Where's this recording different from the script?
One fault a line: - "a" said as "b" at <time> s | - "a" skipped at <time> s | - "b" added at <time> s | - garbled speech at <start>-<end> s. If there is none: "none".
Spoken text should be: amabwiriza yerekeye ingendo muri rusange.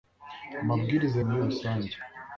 - "yerekeye ingendo" skipped at 1.2 s